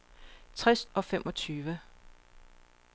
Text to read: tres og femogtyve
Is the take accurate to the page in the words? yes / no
yes